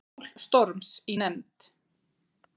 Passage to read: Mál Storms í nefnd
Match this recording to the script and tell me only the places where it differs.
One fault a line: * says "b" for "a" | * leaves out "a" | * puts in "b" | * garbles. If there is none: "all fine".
all fine